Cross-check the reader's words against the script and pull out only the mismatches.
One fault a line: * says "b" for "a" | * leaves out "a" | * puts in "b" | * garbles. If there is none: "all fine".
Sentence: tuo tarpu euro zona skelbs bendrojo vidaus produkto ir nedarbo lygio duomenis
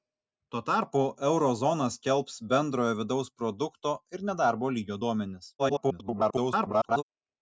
* garbles